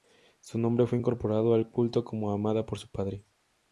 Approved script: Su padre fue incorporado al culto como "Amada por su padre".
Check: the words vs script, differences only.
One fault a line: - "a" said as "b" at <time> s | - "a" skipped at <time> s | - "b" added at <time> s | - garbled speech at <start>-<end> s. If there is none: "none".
- "padre" said as "nombre" at 0.6 s